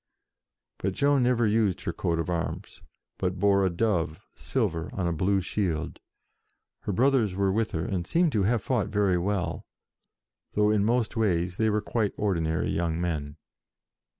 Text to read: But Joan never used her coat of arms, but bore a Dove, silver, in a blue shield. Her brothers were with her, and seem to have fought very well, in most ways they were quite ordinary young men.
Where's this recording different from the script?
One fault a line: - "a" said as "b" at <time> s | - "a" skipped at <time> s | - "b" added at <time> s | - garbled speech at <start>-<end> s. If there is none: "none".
- "in" said as "on" at 4.9 s
- "though" added at 10.5 s